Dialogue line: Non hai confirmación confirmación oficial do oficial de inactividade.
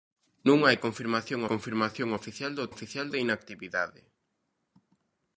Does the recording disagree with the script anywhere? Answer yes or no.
no